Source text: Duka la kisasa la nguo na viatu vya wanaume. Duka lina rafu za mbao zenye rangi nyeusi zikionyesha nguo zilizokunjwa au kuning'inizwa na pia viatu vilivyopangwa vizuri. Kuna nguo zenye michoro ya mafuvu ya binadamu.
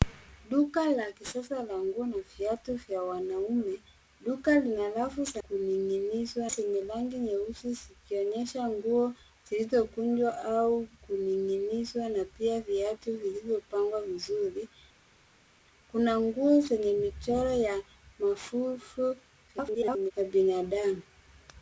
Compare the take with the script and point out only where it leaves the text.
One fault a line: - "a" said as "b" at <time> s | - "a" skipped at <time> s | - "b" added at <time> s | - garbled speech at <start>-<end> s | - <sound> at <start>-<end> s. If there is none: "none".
- "mbao" said as "kuning'inizwa" at 5.5 s
- garbled speech at 19.5-20.1 s